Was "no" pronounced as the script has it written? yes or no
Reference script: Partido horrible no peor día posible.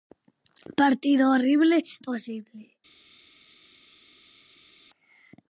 no